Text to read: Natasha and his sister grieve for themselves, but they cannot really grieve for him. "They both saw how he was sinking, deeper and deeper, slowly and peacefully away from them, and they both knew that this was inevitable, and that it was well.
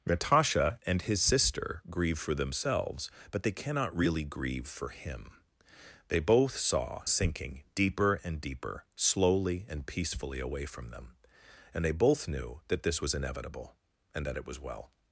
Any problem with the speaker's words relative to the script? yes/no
yes